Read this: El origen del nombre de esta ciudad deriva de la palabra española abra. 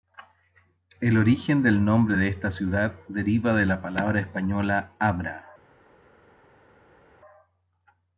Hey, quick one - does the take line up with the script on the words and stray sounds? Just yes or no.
yes